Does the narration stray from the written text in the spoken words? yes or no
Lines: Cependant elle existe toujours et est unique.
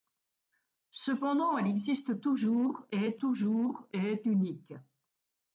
yes